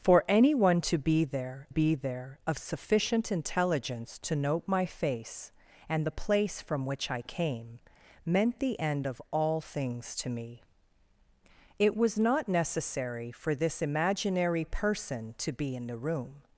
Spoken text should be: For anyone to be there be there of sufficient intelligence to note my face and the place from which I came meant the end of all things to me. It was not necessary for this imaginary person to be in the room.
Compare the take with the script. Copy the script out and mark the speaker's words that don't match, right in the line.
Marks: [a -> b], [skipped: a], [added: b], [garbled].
For anyone to be there be there of sufficient intelligence to note my face and the place from which I came meant the end of all things to me. It was not necessary for this imaginary person to be in the room.